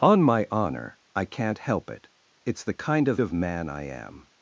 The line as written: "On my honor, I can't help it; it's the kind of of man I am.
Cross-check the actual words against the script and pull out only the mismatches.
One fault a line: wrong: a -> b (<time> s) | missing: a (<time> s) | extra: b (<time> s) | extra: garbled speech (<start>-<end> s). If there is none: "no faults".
no faults